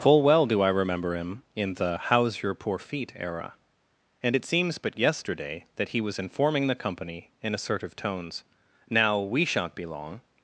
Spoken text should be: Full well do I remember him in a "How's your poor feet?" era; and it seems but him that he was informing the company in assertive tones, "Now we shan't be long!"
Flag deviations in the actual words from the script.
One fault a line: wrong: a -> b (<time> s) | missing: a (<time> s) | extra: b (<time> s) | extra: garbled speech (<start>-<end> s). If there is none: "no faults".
wrong: a -> the (1.8 s)
wrong: him -> yesterday (5.0 s)